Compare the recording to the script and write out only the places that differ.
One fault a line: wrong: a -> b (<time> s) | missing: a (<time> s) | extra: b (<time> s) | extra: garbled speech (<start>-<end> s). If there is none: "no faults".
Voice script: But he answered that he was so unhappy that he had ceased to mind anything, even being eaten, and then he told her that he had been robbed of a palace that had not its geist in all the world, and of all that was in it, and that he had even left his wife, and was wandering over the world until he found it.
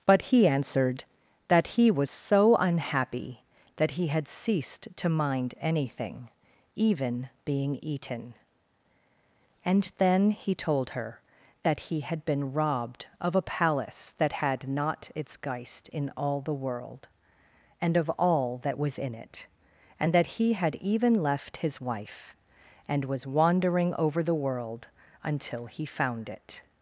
no faults